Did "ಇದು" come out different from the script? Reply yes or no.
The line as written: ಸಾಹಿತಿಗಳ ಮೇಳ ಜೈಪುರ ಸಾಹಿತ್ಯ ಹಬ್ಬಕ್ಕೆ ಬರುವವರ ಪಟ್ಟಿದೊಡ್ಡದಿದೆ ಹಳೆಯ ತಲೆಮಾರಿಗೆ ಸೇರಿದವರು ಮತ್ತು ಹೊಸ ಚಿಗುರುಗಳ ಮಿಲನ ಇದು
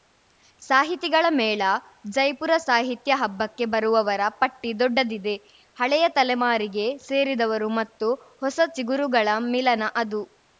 yes